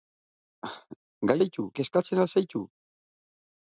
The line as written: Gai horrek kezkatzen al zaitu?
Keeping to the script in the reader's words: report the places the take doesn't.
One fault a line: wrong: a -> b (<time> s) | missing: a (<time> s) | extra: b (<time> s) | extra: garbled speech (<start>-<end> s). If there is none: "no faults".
wrong: horrek -> zaitu (1.4 s)